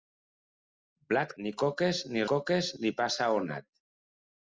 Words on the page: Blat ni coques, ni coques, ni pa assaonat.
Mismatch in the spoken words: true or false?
false